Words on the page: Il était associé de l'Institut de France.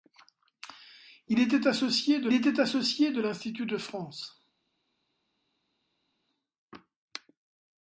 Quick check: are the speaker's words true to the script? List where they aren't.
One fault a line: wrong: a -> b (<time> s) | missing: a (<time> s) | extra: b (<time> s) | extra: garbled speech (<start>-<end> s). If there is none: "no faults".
extra: était associé de (2.3 s)